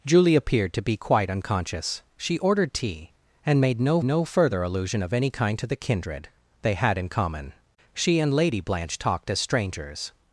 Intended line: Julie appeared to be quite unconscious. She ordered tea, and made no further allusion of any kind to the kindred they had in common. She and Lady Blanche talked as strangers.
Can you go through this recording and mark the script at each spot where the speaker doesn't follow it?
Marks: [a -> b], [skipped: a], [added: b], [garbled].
Julie appeared to be quite unconscious. She ordered tea, and made no [added: no] further allusion of any kind to the kindred they had in common. She and Lady Blanche talked as strangers.